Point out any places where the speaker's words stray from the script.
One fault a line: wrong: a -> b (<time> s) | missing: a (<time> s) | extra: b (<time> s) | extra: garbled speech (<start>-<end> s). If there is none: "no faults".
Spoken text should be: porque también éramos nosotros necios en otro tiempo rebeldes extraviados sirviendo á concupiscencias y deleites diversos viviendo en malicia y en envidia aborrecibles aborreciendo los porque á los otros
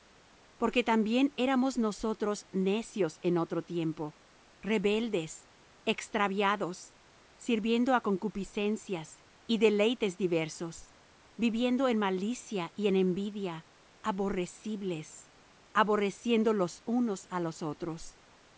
wrong: porque -> unos (16.8 s)